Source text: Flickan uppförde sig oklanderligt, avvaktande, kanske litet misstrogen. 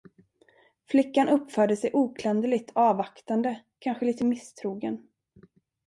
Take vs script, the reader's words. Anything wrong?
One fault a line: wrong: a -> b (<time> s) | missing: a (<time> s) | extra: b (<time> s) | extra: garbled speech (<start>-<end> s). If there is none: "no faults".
no faults